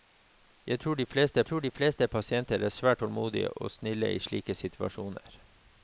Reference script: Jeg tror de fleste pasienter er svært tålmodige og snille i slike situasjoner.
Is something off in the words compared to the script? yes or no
yes